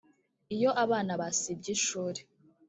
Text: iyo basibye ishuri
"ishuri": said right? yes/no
yes